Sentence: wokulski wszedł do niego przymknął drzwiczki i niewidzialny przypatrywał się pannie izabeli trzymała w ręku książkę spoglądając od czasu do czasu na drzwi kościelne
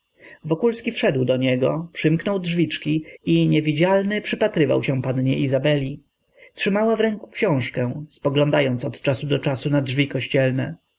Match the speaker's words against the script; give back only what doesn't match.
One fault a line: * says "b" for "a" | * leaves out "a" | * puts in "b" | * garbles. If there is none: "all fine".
all fine